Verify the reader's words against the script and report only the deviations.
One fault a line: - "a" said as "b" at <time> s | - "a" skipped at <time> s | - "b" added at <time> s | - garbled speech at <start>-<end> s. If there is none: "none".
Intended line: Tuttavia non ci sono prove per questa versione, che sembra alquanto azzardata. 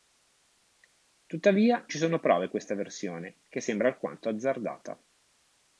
- "non" skipped at 1.9 s
- "per" skipped at 2.5 s